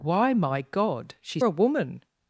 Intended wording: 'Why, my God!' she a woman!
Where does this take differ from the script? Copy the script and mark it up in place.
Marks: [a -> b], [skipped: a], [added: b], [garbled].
'Why, my God!' she a woman!